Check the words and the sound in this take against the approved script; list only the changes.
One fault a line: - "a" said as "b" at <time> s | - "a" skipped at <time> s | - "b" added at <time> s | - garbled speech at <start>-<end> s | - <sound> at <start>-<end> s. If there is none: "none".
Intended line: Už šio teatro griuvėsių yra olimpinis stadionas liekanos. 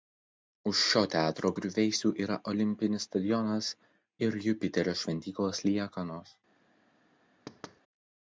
- "ir Jupiterio šventyklos" added at 4.3 s
- thud at 7.5-7.8 s